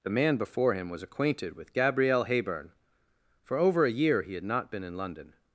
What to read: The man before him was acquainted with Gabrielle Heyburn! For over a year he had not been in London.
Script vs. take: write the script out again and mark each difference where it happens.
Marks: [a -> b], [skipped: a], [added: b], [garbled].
The man before him was acquainted with Gabrielle Heyburn! For over a year he had not been in London.